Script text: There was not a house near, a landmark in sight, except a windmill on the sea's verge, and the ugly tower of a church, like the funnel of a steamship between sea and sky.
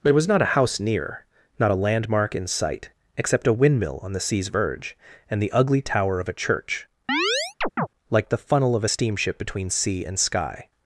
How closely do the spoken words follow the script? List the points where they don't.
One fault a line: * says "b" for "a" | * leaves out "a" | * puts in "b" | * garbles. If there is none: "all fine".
* puts in "not"